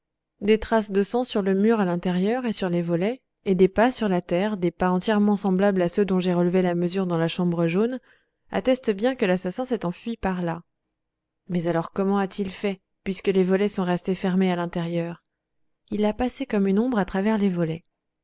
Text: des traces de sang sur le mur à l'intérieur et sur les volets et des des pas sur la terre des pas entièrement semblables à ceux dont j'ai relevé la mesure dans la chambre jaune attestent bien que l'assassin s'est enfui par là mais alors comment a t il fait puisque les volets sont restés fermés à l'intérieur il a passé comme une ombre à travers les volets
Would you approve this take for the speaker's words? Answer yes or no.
no